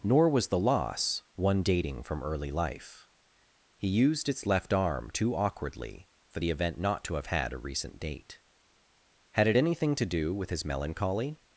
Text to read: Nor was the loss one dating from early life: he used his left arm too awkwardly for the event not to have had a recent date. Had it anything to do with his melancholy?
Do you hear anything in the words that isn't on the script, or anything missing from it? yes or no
yes